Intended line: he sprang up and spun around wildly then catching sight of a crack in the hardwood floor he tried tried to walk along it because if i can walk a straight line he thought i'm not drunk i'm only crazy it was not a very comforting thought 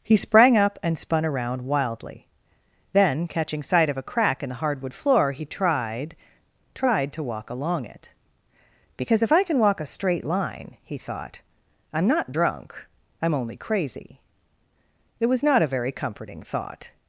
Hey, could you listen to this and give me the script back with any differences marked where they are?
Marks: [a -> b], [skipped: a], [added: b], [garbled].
he sprang up and spun around wildly then catching sight of a crack in the hardwood floor he tried tried to walk along it because if i can walk a straight line he thought i'm not drunk i'm only crazy it was not a very comforting thought